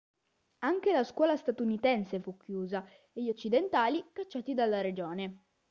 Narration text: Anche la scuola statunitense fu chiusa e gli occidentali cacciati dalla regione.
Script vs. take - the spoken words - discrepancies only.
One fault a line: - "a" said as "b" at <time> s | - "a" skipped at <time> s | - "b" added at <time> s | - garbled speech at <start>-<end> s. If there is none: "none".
none